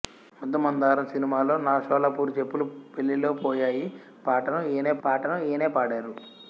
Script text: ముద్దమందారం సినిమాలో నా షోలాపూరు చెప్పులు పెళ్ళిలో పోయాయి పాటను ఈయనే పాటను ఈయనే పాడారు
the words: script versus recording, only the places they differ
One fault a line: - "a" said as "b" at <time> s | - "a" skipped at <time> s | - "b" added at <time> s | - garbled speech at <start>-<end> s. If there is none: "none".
none